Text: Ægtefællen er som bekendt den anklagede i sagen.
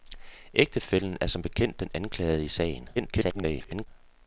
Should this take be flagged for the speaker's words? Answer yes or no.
yes